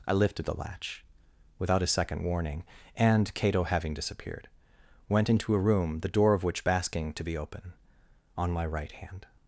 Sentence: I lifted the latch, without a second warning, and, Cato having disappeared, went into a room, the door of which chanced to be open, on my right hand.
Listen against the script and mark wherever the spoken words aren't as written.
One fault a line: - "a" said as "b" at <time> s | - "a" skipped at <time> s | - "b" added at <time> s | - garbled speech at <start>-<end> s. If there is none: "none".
- "chanced" said as "basking" at 6.6 s